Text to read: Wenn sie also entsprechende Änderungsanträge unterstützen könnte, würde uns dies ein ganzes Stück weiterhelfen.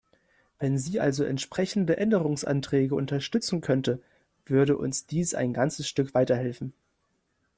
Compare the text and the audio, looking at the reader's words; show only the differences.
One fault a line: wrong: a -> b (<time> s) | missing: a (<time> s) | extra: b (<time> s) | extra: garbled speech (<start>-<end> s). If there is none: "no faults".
no faults